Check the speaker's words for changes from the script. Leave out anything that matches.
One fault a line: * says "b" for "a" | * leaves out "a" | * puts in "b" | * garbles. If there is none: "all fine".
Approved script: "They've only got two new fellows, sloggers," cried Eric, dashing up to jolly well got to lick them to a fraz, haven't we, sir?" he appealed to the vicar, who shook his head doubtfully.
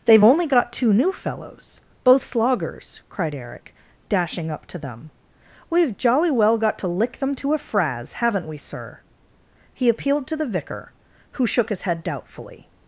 * puts in "both"
* puts in "them We've"